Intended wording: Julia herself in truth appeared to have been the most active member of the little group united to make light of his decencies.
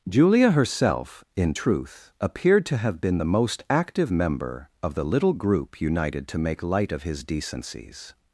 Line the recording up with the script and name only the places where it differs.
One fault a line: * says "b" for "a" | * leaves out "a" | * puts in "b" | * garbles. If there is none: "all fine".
all fine